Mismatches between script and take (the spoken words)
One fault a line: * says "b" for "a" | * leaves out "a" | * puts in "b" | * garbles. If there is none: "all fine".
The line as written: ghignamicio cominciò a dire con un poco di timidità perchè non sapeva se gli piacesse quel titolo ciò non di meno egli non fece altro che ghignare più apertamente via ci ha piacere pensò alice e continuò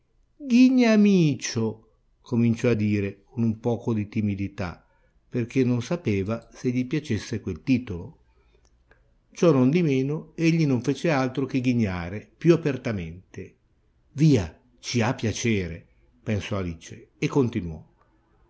all fine